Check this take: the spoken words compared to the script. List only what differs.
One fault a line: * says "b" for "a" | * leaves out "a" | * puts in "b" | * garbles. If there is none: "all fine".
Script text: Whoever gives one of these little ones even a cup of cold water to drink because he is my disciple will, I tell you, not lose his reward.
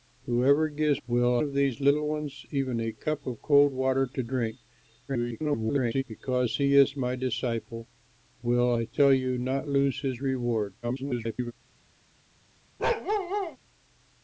* says "will" for "one"
* garbles
* garbles